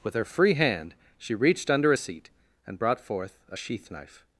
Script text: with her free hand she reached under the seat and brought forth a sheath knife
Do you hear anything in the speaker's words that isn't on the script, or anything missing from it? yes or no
yes